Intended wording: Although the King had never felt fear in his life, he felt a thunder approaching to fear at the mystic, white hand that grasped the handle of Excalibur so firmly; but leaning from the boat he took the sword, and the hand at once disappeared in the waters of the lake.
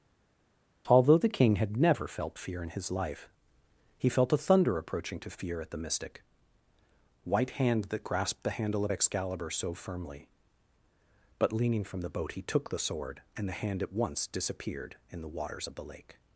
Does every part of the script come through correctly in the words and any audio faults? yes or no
yes